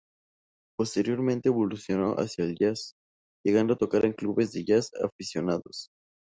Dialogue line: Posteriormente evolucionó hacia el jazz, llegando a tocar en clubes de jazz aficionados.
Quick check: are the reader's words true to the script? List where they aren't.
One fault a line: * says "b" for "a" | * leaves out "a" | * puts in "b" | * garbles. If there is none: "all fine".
all fine